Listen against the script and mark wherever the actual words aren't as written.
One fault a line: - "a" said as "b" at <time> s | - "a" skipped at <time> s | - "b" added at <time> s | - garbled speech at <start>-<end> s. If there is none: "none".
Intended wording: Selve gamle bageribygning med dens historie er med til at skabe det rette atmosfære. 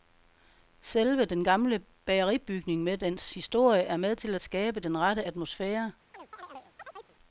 - "den" added at 1.2 s
- "det" said as "den" at 4.8 s